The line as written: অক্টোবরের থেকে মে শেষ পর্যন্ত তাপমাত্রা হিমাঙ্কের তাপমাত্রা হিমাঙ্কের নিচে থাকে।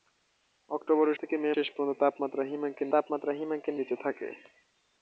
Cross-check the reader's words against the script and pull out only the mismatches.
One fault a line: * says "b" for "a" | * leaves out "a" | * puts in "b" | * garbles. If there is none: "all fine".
all fine